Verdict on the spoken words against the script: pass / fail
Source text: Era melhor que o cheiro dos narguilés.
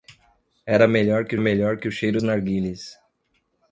fail